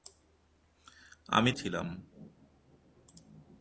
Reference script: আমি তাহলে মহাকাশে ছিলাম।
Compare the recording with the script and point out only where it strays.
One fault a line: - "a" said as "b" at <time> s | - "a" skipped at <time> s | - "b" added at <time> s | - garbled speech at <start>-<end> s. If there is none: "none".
- "তাহলে মহাকাশে" skipped at 1.5 s